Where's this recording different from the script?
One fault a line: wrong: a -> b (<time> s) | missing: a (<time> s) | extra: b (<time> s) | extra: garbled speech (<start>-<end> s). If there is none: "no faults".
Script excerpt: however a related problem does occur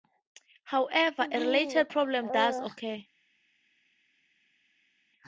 no faults